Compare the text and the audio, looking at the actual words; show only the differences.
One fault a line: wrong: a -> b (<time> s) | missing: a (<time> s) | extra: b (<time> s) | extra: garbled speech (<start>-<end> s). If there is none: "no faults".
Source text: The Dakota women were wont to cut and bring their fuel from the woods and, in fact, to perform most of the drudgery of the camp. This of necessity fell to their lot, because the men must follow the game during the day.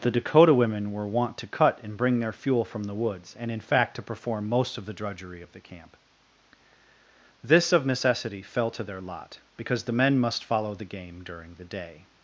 no faults